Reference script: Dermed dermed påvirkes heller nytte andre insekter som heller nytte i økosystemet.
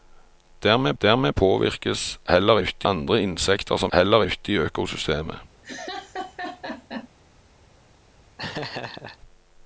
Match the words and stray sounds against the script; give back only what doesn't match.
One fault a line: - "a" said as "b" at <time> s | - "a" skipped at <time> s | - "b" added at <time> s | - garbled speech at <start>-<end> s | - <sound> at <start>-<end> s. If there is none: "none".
- laugh at 5.6-7.1 s
- laugh at 8.4-9.2 s